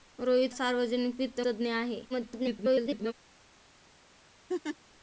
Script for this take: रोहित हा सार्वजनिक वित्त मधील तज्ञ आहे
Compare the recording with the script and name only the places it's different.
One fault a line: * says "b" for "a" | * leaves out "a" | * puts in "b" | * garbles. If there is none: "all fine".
* leaves out "हा"
* leaves out "मधील"
* garbles